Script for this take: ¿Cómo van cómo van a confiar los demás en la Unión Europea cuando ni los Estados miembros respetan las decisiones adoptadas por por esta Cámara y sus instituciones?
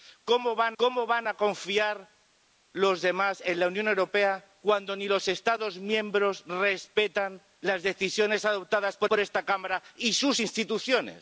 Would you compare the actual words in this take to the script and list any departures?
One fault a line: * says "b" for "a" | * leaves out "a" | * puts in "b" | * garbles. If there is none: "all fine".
all fine